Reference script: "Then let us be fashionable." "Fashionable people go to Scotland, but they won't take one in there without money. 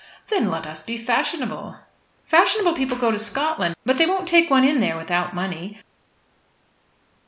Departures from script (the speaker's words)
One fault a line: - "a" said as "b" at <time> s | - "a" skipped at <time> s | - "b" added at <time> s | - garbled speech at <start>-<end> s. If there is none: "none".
none